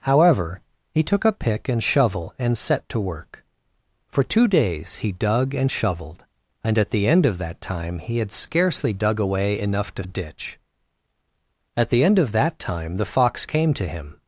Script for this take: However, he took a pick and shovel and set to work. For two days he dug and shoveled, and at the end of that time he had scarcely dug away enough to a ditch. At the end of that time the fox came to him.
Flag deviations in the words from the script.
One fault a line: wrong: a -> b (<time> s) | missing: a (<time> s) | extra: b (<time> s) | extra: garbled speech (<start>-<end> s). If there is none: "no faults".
no faults